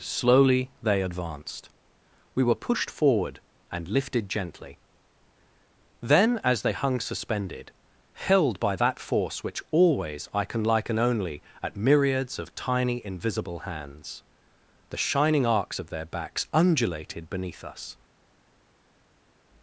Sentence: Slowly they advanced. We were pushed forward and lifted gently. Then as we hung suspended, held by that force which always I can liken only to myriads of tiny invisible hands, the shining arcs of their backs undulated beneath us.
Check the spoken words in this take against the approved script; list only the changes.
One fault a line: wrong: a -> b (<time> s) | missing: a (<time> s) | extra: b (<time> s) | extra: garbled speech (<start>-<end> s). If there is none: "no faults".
wrong: we -> they (6.6 s)
wrong: to -> at (11.6 s)